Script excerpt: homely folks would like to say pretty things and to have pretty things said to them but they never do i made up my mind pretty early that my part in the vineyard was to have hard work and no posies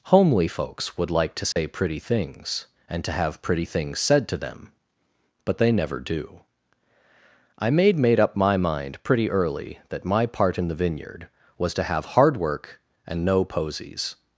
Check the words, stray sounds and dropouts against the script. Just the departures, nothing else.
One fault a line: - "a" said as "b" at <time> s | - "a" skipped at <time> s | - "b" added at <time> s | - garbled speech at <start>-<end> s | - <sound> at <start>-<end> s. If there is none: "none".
- dropout at 1.5-1.6 s
- "made" added at 8.0 s